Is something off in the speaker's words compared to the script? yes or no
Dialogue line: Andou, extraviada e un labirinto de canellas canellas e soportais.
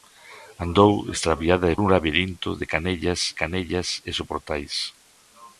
no